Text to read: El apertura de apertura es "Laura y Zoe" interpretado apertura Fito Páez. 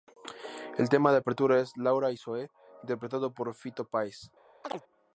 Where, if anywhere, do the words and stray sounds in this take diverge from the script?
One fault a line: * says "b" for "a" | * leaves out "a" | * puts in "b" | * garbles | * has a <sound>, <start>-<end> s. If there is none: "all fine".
* says "tema" for "apertura"
* says "por" for "apertura"
* has a chirp, 4.6-4.8 s